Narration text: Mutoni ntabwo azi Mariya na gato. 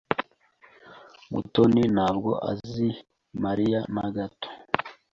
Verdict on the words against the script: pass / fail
pass